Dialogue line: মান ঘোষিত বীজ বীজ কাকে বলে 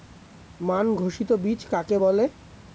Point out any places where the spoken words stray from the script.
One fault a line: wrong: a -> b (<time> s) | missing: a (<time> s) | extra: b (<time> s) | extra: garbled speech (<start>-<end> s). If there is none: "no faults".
missing: বীজ (1.6 s)